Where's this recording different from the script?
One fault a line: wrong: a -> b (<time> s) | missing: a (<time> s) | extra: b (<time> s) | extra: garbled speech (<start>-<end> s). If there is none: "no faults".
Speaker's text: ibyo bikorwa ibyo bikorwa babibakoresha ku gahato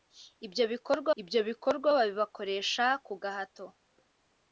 no faults